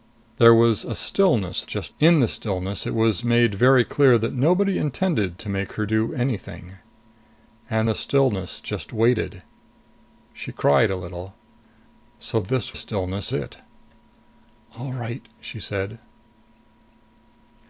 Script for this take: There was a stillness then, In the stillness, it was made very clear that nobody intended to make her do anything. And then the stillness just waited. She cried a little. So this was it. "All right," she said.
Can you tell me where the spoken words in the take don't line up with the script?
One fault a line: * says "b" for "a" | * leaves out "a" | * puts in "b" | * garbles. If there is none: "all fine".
* says "just" for "then"
* leaves out "then"
* says "stillness" for "was"